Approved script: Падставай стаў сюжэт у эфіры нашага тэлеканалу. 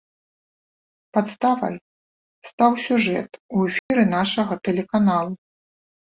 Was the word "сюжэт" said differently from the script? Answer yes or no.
no